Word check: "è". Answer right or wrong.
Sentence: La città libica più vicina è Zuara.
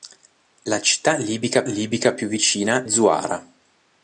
wrong